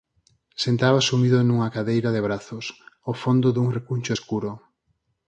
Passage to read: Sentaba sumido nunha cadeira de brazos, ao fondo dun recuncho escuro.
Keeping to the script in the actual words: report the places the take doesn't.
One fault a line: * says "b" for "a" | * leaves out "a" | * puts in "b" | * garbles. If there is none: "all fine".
all fine